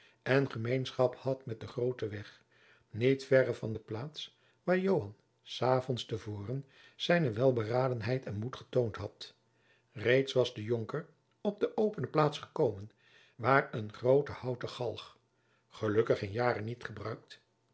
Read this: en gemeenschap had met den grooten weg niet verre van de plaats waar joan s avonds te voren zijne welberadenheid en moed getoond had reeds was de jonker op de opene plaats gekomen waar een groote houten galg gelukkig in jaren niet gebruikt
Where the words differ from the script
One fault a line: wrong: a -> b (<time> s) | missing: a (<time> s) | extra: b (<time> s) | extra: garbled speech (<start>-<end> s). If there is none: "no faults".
no faults